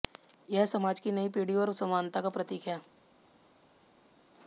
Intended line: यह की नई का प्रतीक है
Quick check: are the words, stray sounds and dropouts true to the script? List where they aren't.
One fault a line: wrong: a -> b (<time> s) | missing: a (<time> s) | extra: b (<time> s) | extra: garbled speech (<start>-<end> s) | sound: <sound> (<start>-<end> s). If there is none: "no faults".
extra: समाज (0.7 s)
extra: पीढ़ी और समानता (1.3 s)